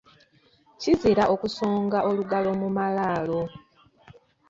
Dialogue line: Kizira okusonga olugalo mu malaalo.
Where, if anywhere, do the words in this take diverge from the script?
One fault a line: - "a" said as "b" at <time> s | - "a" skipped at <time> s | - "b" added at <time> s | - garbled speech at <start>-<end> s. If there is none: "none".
none